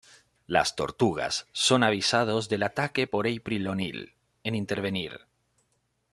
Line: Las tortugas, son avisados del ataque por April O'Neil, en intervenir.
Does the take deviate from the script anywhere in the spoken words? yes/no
no